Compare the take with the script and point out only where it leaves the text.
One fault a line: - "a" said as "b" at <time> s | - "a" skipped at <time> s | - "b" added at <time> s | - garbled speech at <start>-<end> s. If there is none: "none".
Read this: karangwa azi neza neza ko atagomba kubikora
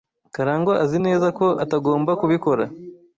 - "neza" skipped at 1.3 s